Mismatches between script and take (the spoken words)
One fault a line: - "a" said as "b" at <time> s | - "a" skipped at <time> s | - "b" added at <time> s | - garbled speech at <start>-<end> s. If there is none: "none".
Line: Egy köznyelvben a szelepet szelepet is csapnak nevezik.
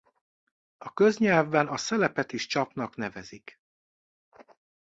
- "Egy" said as "A" at 0.8 s
- "szelepet" skipped at 2.3 s